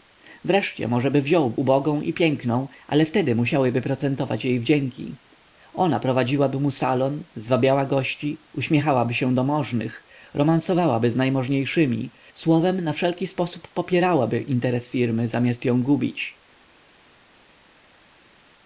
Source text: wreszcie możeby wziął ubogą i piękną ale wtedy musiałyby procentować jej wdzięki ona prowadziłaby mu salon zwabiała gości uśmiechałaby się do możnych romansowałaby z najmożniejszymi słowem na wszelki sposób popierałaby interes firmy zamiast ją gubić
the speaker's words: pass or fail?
pass